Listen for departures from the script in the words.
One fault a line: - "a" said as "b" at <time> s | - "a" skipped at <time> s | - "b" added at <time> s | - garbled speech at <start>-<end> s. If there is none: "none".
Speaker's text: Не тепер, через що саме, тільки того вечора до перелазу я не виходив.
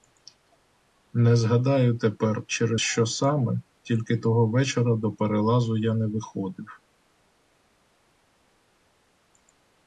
- "згадаю" added at 1.4 s